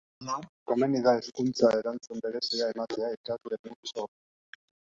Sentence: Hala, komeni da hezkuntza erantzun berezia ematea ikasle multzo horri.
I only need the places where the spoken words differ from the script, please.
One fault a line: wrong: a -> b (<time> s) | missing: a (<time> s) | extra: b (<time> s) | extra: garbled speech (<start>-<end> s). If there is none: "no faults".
no faults